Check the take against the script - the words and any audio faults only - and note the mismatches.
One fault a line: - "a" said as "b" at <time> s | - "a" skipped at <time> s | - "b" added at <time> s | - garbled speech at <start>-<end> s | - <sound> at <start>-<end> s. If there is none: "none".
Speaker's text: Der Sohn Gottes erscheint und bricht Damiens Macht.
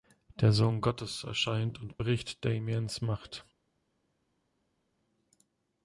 none